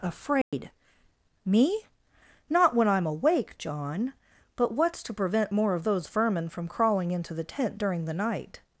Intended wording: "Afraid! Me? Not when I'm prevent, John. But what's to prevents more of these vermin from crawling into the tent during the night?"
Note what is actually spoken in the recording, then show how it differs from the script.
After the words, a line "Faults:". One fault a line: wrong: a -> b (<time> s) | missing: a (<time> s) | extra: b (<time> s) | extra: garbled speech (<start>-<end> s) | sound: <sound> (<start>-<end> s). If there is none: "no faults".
"Afraid! Me? Not when I'm awake, John. But what's to prevent more of those vermin from crawling into the tent during the night?"
Faults:
sound: dropout (0.4-0.5 s)
wrong: prevent -> awake (3.0 s)
wrong: prevents -> prevent (5.1 s)
wrong: these -> those (5.8 s)